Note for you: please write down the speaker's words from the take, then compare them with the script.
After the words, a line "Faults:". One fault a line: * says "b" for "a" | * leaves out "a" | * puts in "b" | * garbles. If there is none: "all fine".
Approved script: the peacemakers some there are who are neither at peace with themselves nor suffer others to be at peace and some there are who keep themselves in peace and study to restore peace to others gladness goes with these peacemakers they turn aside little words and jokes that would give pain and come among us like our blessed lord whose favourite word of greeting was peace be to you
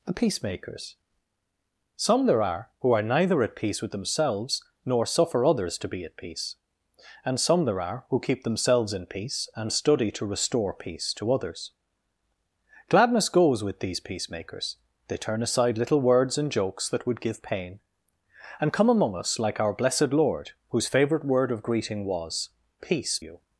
the peacemakers some there are who are neither at peace with themselves nor suffer others to be at peace and some there are who keep themselves in peace and study to restore peace to others gladness goes with these peacemakers they turn aside little words and jokes that would give pain and come among us like our blessed lord whose favourite word of greeting was peace you
Faults:
* leaves out "be to"